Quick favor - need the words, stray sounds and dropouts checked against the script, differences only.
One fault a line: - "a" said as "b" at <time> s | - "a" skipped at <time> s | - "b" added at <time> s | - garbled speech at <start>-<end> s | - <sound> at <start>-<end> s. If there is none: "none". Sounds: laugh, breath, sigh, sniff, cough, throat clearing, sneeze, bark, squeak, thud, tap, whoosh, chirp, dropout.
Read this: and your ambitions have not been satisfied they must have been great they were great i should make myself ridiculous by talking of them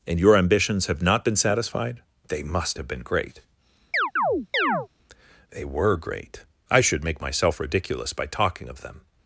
- chirp at 3.9-4.9 s